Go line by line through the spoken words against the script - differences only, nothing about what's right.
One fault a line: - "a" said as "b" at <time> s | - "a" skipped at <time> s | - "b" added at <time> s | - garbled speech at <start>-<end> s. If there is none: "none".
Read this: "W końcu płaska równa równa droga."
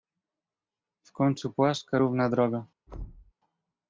- "równa" skipped at 2.3 s